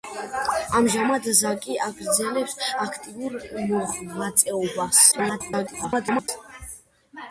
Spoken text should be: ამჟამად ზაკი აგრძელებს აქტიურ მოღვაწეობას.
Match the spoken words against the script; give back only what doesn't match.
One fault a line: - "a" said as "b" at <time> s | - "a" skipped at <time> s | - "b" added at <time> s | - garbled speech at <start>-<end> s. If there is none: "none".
- garbled speech at 5.1-6.3 s